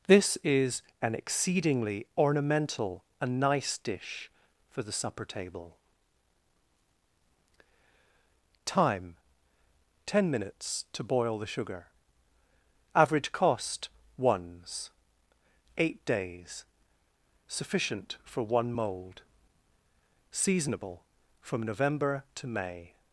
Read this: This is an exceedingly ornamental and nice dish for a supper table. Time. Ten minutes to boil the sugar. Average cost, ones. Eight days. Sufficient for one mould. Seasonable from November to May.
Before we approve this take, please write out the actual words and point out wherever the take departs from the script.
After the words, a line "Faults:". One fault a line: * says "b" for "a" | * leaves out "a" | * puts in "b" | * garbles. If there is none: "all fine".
This is an exceedingly ornamental and nice dish for the supper table. Time. Ten minutes to boil the sugar. Average cost, ones. Eight days. Sufficient for one mould. Seasonable from November to May.
Faults:
* says "the" for "a"